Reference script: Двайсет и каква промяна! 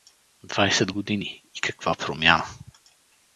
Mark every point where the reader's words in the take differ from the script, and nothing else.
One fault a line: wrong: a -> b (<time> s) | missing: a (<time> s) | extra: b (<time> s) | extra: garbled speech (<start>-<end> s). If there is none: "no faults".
extra: години (0.9 s)